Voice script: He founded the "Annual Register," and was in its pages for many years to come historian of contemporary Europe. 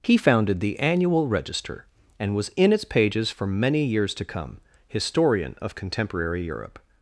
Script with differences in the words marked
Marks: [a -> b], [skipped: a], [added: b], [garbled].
He founded the "Annual Register," and was in its pages for many years to come historian of contemporary Europe.